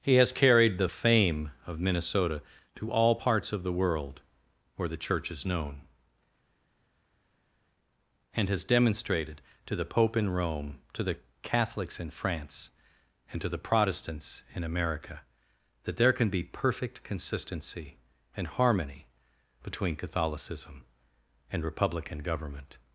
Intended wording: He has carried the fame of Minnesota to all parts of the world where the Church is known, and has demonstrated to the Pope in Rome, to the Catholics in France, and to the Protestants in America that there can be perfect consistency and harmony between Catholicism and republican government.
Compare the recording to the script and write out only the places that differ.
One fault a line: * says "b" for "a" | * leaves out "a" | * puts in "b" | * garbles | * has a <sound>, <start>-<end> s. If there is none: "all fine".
all fine